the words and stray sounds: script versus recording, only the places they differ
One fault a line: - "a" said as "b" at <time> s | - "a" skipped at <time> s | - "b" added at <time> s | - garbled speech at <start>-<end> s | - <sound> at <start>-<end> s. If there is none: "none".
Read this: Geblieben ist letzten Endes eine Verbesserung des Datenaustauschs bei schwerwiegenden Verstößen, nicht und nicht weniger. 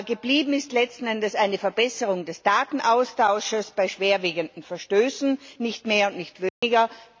- "mehr" added at 5.9 s
- dropout at 6.5-6.6 s